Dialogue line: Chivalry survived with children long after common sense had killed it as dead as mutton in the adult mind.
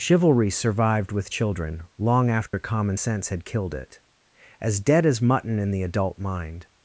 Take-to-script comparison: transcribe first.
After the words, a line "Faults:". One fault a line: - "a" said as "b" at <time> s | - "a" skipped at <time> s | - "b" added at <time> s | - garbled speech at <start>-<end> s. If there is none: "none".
Chivalry survived with children long after common sense had killed it as dead as mutton in the adult mind.
Faults:
none